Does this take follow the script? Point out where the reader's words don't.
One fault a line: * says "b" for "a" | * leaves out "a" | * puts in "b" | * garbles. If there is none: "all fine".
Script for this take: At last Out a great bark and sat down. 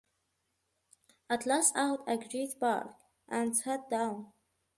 all fine